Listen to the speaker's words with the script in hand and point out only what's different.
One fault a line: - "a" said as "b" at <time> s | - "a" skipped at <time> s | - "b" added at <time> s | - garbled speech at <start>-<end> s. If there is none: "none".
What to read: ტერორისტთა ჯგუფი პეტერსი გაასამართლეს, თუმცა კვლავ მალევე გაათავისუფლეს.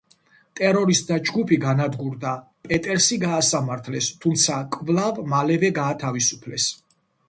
- "განადგურდა" added at 1.6 s